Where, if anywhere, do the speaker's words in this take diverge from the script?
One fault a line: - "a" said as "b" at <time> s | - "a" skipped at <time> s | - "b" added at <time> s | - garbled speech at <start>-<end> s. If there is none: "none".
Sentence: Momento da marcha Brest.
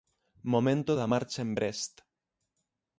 - "en" added at 1.4 s